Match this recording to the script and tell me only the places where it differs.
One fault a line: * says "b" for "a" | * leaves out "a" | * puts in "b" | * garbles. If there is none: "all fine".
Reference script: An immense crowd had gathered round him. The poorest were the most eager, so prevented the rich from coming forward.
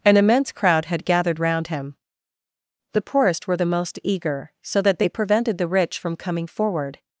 * puts in "that they"